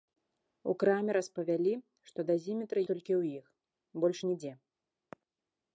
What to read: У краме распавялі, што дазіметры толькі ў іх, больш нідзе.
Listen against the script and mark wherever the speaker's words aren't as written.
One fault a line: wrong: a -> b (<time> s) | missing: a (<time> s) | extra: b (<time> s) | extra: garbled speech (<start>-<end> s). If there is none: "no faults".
no faults